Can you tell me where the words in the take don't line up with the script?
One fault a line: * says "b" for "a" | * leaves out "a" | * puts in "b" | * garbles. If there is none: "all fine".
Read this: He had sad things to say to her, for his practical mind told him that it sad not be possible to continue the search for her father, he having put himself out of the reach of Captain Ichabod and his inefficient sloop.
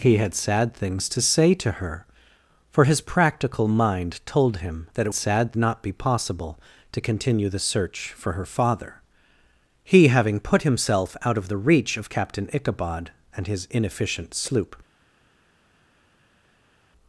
all fine